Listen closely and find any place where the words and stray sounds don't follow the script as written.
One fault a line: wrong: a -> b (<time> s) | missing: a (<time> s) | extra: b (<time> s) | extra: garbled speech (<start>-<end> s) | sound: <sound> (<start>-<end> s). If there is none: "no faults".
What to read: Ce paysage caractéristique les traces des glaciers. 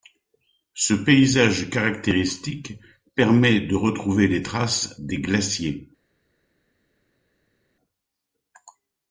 extra: permet de retrouver (3.1 s)